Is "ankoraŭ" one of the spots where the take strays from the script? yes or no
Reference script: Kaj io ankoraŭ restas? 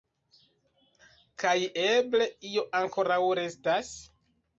no